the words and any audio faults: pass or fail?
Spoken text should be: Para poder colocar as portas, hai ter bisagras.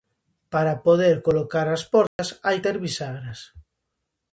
fail